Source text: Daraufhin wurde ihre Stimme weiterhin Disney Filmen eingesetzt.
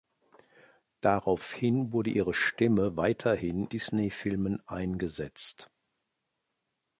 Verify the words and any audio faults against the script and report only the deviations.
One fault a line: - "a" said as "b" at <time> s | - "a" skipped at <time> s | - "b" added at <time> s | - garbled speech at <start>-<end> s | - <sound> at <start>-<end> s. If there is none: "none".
none